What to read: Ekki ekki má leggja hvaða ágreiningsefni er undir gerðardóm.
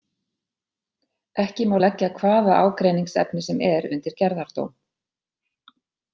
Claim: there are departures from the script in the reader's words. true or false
true